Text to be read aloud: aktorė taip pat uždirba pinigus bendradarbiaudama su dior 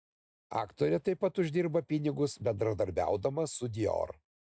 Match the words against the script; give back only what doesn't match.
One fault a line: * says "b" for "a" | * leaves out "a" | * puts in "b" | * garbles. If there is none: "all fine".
all fine